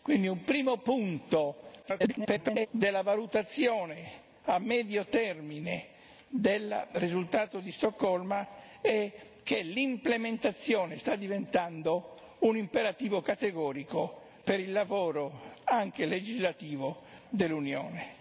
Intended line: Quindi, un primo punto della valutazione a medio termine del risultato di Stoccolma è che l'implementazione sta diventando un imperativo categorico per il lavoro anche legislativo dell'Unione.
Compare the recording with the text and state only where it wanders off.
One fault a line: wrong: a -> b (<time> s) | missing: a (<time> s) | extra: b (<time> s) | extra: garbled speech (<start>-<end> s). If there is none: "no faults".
extra: garbled speech (1.8-2.7 s)